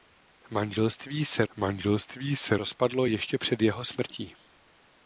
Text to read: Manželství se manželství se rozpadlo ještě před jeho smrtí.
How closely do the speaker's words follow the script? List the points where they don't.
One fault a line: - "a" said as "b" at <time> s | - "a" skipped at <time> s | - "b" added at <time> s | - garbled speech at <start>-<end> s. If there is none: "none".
none